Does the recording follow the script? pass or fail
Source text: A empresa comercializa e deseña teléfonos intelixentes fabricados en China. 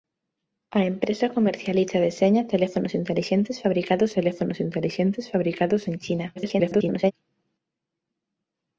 fail